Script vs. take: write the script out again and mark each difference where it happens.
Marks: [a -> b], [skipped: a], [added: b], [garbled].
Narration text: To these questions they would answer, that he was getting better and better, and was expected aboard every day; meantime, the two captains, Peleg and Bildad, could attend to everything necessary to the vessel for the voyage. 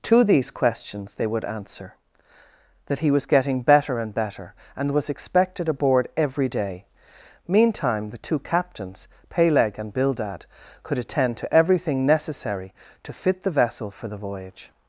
To these questions they would answer, that he was getting better and better, and was expected aboard every day; meantime, the two captains, Peleg and Bildad, could attend to everything necessary to [added: fit] the vessel for the voyage.